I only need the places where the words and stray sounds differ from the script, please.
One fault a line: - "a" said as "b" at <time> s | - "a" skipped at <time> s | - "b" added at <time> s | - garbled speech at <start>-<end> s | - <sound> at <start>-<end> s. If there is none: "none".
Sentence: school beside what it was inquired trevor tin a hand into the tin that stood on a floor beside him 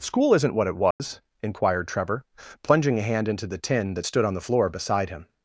- "beside" said as "isn't" at 0.3 s
- dropout at 0.9-1.0 s
- "tin" said as "plunging" at 2.6 s
- "a" said as "the" at 4.3 s